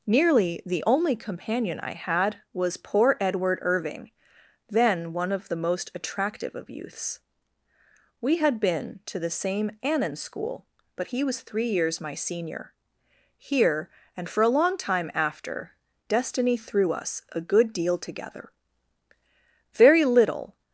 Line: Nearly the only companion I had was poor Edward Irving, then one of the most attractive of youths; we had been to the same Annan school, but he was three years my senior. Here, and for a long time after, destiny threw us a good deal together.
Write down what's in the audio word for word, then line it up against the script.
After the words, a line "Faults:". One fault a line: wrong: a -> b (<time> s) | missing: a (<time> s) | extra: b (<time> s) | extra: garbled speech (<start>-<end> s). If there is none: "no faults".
Nearly the only companion I had was poor Edward Irving, then one of the most attractive of youths; we had been to the same Annan school, but he was three years my senior. Here, and for a long time after, destiny threw us a good deal together. Very little
Faults:
extra: Very little (19.7 s)